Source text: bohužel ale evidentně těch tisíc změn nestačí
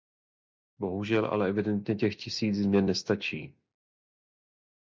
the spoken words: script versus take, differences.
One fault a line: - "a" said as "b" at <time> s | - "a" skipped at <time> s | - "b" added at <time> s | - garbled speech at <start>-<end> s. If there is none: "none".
none